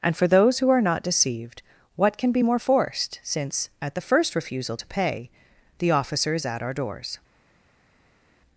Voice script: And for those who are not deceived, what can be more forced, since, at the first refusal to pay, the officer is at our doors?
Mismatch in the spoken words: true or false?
false